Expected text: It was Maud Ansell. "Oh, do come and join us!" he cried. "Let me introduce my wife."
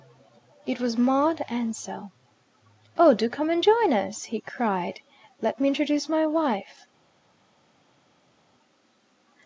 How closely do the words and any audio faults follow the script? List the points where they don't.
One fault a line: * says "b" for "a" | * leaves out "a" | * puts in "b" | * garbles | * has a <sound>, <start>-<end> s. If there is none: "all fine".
all fine